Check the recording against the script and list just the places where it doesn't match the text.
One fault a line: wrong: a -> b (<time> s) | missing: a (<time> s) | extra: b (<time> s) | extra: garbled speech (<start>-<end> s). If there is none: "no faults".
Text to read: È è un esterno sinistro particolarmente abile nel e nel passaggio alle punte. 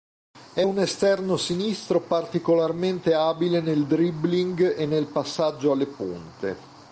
missing: è (0.7 s)
extra: dribbling (3.9 s)